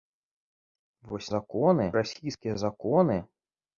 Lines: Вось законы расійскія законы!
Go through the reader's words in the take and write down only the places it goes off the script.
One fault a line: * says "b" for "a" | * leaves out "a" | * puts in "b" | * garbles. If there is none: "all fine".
all fine